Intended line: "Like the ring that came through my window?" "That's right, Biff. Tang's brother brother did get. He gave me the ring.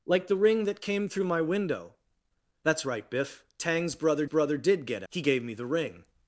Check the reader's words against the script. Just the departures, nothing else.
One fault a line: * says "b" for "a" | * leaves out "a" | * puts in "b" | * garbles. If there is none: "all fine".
all fine